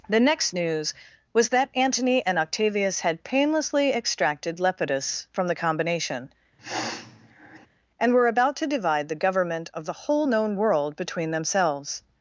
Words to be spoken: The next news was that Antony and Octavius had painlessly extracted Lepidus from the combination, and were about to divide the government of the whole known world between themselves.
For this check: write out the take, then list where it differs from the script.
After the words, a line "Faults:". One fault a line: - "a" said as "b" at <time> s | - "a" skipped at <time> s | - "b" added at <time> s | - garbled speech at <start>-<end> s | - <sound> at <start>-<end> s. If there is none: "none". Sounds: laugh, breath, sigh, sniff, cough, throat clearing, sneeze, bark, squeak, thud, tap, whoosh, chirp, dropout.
The next news was that Antony and Octavius had painlessly extracted Lepidus from the combination, and were about to divide the government of the whole known world between themselves.
Faults:
- sniff at 6.6-7.7 s